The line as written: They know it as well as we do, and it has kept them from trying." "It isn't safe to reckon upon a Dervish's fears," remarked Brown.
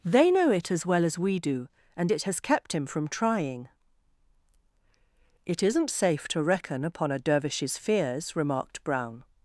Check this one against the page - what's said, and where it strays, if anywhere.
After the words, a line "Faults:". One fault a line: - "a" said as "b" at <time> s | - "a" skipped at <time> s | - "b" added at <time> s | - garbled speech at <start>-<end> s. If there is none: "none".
They know it as well as we do, and it has kept him from trying." "It isn't safe to reckon upon a Dervish's fears," remarked Brown.
Faults:
- "them" said as "him" at 2.7 s